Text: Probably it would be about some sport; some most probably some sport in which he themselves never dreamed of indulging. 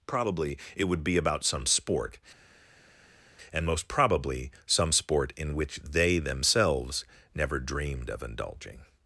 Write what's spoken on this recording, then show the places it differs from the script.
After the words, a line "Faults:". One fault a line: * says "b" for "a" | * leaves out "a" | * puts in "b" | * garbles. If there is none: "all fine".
Probably it would be about some sport; and most probably some sport in which they themselves never dreamed of indulging.
Faults:
* says "and" for "some"
* says "they" for "he"